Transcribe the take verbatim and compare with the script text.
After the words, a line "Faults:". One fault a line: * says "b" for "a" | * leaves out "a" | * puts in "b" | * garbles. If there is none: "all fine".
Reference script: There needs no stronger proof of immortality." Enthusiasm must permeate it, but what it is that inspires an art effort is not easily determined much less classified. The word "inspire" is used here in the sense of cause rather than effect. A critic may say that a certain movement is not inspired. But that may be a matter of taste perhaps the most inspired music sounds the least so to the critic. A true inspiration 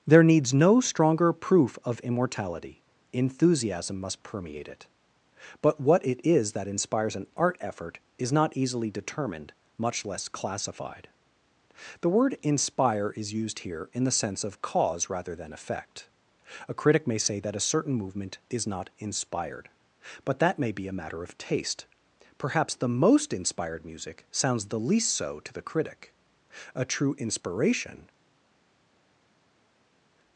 There needs no stronger proof of immortality." Enthusiasm must permeate it, but what it is that inspires an art effort is not easily determined much less classified. The word "inspire" is used here in the sense of cause rather than effect. A critic may say that a certain movement is not inspired. But that may be a matter of taste perhaps the most inspired music sounds the least so to the critic. A true inspiration
Faults:
all fine